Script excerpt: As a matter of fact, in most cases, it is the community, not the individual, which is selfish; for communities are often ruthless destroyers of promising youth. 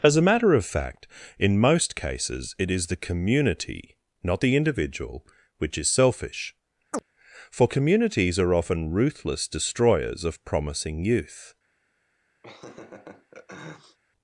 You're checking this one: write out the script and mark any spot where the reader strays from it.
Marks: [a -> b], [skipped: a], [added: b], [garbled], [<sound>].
As a matter of fact, in most cases, it is the community, not the individual, which is selfish; [chirp] for communities are often ruthless destroyers of promising youth. [laugh]